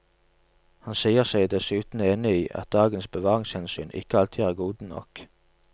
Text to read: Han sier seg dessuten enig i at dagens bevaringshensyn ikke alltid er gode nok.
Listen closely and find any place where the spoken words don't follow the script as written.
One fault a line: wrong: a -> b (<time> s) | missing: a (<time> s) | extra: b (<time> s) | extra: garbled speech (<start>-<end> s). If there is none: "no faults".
no faults